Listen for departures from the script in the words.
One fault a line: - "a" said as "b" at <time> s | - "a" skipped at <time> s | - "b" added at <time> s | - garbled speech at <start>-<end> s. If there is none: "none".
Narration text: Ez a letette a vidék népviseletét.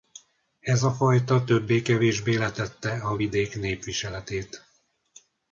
- "fajta többé kevésbé" added at 0.9 s